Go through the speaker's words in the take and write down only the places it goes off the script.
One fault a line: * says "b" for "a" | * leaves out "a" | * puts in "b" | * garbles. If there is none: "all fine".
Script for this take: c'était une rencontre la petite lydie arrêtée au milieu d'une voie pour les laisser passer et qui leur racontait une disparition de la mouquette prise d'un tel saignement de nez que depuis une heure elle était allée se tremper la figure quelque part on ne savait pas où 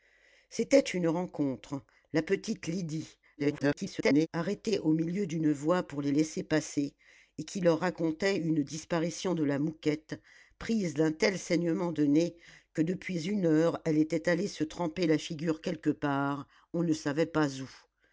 * garbles